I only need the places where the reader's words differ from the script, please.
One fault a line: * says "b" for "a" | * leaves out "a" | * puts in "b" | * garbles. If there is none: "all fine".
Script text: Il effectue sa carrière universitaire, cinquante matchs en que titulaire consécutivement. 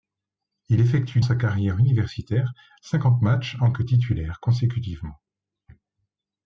all fine